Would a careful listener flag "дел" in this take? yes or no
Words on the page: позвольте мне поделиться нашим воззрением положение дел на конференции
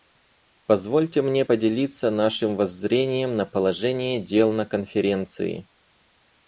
no